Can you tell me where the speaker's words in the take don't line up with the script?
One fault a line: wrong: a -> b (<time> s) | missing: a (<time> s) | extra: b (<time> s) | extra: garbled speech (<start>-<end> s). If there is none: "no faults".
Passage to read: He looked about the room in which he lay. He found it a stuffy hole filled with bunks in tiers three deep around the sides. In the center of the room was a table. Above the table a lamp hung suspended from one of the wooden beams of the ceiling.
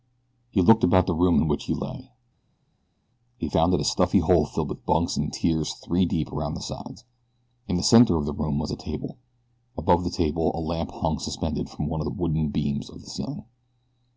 no faults